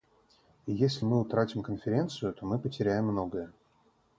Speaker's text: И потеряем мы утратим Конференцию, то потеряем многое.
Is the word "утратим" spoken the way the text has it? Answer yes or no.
yes